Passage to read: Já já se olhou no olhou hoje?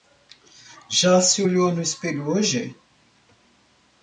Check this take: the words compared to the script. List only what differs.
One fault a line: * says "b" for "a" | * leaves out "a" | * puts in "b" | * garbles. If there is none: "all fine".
* leaves out "já"
* says "espelho" for "olhou"